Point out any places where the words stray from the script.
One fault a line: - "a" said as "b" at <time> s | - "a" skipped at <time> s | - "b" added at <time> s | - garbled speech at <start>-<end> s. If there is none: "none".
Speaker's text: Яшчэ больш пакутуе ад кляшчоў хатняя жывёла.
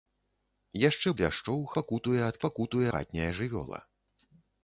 - "больш" said as "кляшчоў" at 1.2 s
- "кляшчоў" said as "пакутуе" at 2.4 s